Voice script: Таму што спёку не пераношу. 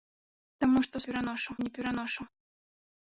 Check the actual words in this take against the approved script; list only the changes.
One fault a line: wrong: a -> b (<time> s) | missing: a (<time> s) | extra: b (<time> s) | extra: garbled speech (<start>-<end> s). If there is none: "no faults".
wrong: спёку -> пераношу (1.1 s)